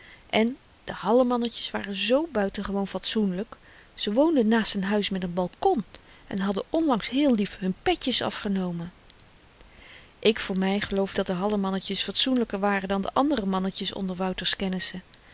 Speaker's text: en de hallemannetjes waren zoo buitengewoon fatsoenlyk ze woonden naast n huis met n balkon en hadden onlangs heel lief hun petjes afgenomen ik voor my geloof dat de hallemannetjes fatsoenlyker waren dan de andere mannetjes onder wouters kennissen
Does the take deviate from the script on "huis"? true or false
false